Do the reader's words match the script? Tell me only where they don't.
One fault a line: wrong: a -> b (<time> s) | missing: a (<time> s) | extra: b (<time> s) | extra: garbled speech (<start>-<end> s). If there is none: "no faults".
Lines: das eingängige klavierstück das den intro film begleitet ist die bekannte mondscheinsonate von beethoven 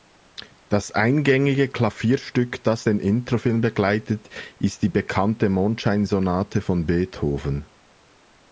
no faults